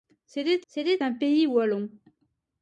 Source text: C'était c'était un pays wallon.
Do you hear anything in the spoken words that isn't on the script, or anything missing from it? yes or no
no